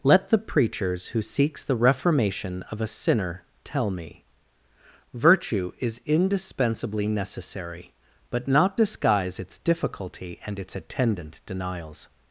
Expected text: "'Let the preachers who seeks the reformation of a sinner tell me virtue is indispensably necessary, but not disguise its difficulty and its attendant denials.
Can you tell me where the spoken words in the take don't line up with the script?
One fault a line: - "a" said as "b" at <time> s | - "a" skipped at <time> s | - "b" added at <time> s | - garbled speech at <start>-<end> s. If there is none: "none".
none